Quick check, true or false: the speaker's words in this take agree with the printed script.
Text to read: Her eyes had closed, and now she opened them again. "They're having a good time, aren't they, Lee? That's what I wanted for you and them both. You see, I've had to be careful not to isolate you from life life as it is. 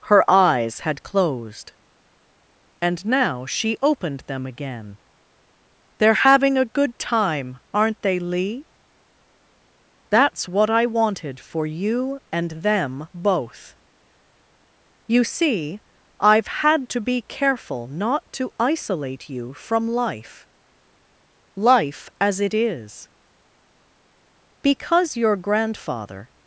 false